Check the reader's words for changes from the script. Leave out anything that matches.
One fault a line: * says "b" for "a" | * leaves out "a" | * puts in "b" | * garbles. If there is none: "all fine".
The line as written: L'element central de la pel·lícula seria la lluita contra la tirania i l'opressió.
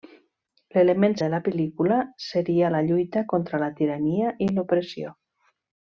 * leaves out "central"